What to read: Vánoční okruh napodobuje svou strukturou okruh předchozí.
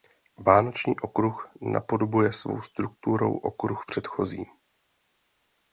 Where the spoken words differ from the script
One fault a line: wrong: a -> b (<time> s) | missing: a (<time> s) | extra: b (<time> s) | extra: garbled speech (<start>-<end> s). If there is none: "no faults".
no faults